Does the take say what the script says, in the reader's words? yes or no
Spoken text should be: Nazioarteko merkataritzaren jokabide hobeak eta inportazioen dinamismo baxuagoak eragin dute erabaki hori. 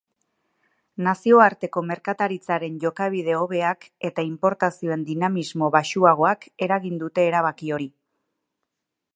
yes